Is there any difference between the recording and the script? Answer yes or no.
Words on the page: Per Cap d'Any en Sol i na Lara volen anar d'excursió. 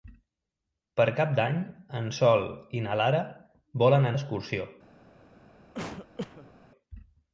yes